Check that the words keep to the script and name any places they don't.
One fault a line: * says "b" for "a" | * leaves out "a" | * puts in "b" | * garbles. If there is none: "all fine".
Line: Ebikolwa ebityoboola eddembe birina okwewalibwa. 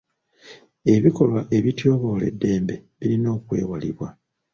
all fine